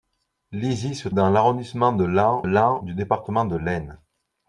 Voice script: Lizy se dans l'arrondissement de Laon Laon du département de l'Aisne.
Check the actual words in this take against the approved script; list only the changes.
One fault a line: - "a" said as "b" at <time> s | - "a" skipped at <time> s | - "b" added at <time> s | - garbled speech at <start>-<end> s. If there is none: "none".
none